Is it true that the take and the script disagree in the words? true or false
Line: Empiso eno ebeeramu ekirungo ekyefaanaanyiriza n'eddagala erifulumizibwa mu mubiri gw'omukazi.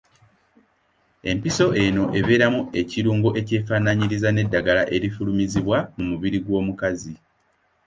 false